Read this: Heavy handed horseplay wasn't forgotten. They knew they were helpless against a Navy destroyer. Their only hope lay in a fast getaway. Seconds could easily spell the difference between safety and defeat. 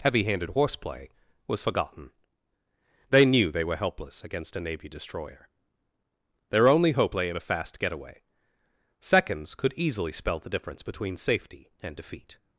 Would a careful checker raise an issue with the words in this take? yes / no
yes